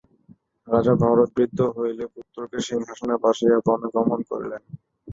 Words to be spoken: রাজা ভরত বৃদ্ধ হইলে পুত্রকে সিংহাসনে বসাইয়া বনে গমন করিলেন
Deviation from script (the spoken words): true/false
false